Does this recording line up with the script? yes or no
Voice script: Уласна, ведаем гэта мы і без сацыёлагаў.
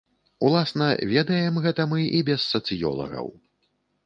yes